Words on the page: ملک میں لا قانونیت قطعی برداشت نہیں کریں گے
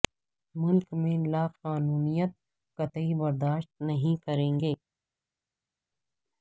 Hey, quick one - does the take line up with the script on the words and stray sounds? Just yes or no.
yes